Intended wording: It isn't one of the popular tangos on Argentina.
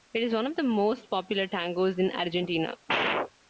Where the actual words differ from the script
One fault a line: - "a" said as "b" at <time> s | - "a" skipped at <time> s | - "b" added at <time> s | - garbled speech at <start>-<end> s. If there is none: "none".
- "isn't" said as "is" at 0.2 s
- "most" added at 0.6 s
- "on" said as "in" at 2.0 s